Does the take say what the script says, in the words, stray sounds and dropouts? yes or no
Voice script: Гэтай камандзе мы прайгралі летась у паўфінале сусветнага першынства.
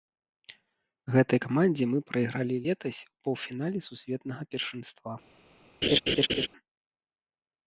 no